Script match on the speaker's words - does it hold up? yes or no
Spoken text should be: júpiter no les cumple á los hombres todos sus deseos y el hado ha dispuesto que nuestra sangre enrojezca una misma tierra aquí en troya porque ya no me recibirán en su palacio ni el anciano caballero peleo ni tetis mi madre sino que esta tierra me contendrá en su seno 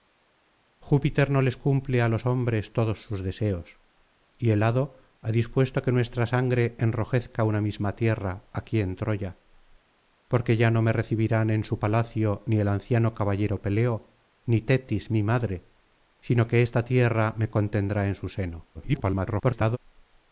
no